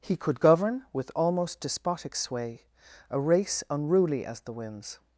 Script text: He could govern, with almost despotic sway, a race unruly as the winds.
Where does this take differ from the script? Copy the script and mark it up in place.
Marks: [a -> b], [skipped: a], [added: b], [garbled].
He could govern, with almost despotic sway, a race unruly as the winds.